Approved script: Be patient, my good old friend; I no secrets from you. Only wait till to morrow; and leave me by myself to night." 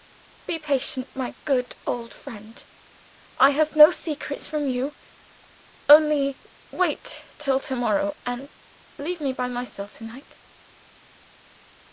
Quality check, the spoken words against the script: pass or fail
fail